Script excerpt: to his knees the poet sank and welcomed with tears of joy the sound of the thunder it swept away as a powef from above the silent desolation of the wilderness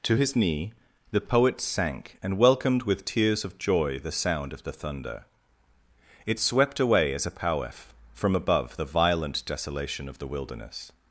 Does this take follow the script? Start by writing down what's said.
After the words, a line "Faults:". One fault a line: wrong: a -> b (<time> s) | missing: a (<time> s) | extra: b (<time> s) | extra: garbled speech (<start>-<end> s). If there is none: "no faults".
to his knee the poet sank and welcomed with tears of joy the sound of the thunder it swept away as a powef from above the violent desolation of the wilderness
Faults:
wrong: knees -> knee (0.4 s)
wrong: silent -> violent (8.8 s)